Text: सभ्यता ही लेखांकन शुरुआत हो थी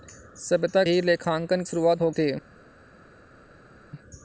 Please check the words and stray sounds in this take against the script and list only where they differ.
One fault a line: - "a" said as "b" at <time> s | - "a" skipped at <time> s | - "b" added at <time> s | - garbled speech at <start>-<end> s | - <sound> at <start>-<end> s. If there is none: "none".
none